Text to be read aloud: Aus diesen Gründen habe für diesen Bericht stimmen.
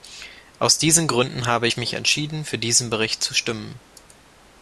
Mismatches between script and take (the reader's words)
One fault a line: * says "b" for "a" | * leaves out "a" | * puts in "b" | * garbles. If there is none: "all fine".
* puts in "ich mich entschieden"
* puts in "zu"